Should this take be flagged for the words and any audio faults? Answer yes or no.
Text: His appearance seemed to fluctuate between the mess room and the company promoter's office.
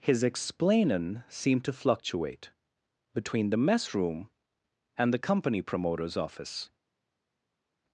yes